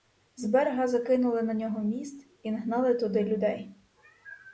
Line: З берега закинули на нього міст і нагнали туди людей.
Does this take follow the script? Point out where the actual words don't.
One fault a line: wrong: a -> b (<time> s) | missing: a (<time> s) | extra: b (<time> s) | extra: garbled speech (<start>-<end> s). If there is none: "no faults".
no faults